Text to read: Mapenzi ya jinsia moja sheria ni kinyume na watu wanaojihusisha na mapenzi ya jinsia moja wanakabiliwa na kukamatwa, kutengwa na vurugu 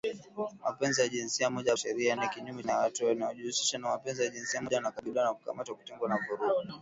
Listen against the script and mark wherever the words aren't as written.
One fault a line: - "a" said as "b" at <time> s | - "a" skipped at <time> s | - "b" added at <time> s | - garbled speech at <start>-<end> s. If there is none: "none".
none